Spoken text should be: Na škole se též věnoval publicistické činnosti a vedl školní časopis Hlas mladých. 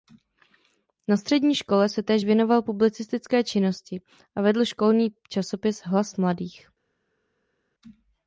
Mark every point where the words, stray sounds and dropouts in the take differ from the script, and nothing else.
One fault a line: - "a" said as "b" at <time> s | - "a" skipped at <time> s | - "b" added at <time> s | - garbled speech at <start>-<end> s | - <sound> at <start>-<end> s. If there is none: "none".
- "střední" added at 1.2 s